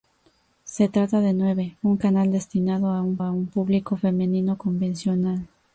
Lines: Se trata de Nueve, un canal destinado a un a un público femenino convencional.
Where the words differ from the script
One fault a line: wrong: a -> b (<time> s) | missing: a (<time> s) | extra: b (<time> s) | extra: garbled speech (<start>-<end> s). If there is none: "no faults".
no faults